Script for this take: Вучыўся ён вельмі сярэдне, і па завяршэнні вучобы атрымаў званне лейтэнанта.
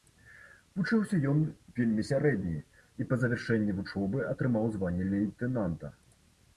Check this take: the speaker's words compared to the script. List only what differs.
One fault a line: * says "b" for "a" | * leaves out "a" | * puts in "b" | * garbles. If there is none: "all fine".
all fine